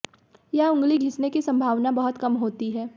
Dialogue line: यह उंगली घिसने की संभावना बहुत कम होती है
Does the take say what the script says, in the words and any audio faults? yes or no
yes